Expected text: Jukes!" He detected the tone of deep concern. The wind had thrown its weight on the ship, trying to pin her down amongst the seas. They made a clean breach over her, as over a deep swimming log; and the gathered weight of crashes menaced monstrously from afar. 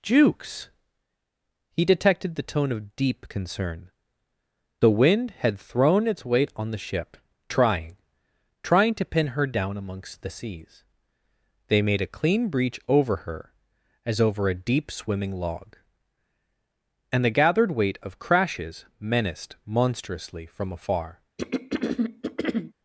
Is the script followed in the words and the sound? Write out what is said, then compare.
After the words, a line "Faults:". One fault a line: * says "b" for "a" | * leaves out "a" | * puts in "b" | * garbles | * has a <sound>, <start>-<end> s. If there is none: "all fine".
Jukes!" He detected the tone of deep concern. The wind had thrown its weight on the ship, trying trying to pin her down amongst the seas. They made a clean breach over her, as over a deep swimming log; and the gathered weight of crashes menaced monstrously from afar.
Faults:
* puts in "trying"
* has a throat clearing, 21.4-22.7 s